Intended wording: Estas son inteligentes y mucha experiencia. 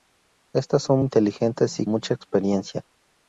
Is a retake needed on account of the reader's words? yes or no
no